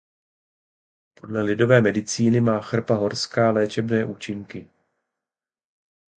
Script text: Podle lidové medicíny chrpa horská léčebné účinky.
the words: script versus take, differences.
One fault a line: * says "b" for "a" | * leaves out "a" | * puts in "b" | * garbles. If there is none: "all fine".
* puts in "má"